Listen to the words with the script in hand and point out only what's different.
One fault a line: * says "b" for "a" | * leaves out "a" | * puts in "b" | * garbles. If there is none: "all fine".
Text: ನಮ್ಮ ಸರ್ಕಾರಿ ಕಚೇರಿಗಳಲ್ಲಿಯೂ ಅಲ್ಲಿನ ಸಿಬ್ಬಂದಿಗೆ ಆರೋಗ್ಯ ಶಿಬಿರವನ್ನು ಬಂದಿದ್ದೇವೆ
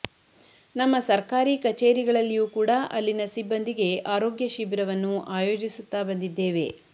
* puts in "ಕೂಡ"
* puts in "ಆಯೋಜಿಸುತ್ತಾ"